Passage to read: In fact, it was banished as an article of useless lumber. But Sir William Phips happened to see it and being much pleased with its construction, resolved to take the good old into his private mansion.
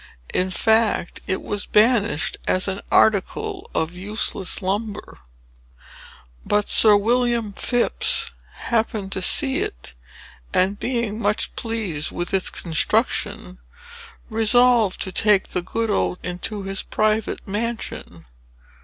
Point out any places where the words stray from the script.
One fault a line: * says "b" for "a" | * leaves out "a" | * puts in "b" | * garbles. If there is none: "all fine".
all fine